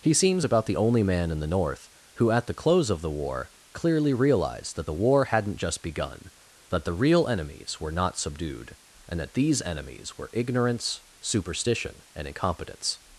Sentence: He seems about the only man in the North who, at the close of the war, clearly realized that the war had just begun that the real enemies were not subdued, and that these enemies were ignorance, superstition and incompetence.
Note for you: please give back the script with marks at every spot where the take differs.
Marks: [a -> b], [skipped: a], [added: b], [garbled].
He seems about the only man in the North who, at the close of the war, clearly realized that the war [had -> hadn't] just begun that the real enemies were not subdued, and that these enemies were ignorance, superstition and incompetence.